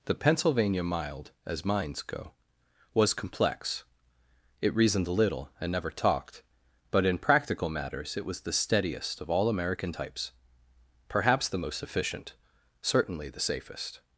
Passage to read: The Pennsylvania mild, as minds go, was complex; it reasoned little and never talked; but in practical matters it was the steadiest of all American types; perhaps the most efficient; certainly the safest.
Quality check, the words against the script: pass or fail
pass